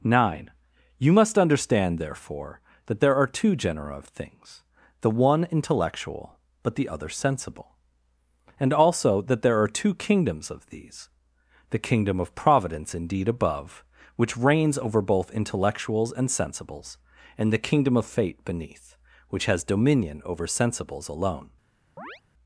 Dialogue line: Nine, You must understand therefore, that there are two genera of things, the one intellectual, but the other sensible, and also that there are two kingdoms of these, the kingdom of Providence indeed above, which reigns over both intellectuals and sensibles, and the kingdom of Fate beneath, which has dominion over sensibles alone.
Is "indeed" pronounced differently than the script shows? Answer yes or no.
no